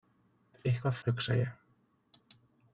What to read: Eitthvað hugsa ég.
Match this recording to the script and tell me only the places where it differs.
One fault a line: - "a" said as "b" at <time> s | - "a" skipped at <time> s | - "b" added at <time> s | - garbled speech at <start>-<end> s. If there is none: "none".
none